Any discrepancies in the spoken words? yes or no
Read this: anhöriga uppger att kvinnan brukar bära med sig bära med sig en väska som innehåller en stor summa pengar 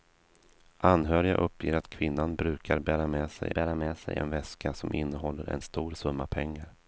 no